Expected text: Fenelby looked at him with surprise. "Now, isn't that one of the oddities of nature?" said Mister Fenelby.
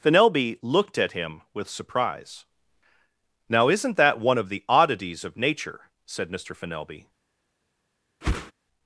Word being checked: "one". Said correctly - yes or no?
yes